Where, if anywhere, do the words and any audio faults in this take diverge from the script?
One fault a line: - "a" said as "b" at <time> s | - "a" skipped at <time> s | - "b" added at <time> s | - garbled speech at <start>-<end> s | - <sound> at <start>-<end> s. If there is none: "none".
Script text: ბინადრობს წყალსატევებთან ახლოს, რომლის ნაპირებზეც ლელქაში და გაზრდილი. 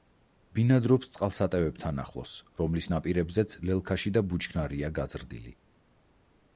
- "ბუჩქნარია" added at 4.3 s